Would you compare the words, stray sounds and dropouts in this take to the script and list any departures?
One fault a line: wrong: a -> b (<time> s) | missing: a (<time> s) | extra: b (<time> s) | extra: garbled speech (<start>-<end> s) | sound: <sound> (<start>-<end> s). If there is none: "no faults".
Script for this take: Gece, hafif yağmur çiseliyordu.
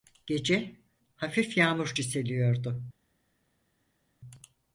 no faults